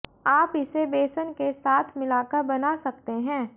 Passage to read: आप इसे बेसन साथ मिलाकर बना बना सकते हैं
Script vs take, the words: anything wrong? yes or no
yes